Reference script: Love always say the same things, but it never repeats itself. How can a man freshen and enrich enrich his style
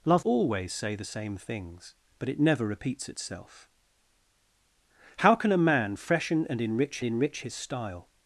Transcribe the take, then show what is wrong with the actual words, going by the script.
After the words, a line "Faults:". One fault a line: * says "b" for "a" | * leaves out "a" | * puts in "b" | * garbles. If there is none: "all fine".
Love always say the same things, but it never repeats itself. How can a man freshen and enrich enrich his style
Faults:
all fine